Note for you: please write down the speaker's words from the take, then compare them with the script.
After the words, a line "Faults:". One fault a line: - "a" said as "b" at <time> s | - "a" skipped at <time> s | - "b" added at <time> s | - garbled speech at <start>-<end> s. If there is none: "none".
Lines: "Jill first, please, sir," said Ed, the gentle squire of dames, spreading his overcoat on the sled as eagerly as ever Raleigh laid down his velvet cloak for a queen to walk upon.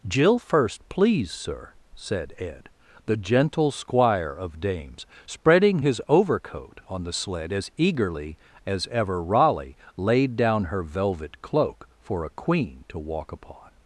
"Jill first, please, sir," said Ed, the gentle squire of dames, spreading his overcoat on the sled as eagerly as ever Raleigh laid down her velvet cloak for a queen to walk upon.
Faults:
- "his" said as "her" at 10.6 s